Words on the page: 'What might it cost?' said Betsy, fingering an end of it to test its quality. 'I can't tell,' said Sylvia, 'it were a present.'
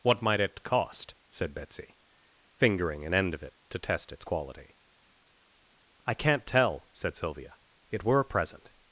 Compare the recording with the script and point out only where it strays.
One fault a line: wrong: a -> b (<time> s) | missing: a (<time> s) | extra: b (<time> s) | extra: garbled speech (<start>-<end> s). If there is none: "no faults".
no faults